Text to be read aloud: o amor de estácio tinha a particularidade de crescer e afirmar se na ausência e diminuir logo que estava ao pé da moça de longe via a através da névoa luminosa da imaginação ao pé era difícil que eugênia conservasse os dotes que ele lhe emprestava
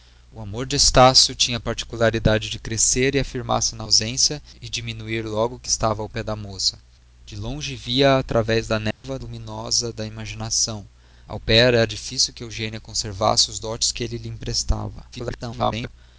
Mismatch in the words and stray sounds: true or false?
true